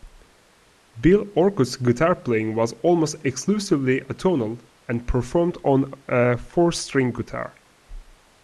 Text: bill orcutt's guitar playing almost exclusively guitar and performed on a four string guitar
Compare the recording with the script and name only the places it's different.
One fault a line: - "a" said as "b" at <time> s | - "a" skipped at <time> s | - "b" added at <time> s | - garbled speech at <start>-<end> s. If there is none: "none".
- "was" added at 2.5 s
- "guitar" said as "atonal" at 4.0 s